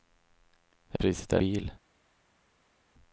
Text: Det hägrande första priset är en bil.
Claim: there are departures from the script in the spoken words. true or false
true